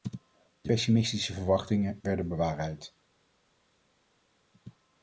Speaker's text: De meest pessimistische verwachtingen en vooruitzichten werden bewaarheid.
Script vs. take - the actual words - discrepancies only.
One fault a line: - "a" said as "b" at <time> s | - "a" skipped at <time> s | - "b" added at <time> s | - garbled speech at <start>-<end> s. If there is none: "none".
- "meest" skipped at 0.7 s
- "en vooruitzichten" skipped at 2.0 s